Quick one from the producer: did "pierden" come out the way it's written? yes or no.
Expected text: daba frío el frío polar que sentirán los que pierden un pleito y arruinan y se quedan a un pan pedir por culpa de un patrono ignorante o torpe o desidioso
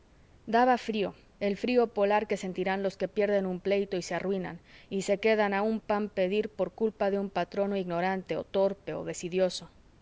yes